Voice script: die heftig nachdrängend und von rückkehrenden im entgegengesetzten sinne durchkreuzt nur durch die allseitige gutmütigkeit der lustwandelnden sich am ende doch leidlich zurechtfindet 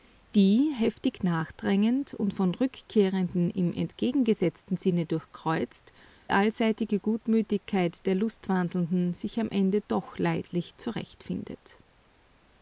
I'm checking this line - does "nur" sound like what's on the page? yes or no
no